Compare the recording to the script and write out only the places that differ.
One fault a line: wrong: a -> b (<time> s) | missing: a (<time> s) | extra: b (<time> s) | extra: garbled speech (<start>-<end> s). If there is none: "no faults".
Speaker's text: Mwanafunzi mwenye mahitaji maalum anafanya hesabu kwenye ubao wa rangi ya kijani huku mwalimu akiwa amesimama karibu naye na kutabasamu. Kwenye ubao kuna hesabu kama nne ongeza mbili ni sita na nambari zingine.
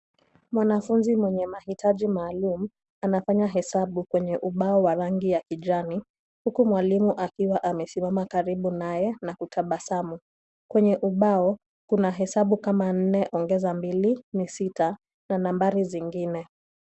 no faults